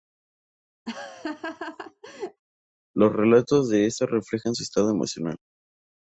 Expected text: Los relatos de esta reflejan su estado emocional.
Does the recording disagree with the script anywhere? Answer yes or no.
no